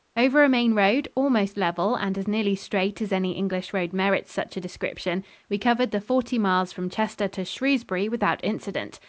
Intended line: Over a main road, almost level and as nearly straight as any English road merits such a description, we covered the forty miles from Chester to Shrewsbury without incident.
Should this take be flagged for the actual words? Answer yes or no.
no